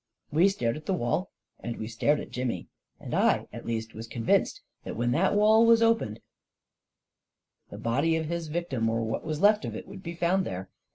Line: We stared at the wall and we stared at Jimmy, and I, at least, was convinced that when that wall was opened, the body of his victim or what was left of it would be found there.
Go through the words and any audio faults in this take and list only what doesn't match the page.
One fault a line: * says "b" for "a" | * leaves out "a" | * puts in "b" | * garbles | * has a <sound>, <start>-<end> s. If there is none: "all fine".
all fine